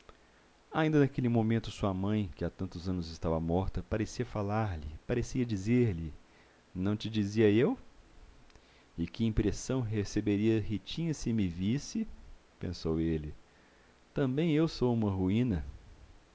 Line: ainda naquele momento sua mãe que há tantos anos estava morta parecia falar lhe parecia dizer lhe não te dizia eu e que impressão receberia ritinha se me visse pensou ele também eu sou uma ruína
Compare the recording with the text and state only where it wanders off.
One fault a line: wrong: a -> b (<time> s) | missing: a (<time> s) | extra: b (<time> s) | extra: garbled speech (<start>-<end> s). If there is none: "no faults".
no faults